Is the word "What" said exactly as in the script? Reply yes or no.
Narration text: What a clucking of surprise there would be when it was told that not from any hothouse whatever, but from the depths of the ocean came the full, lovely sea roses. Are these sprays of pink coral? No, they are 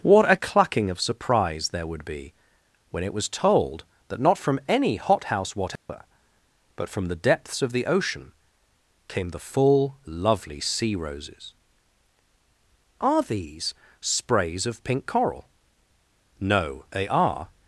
yes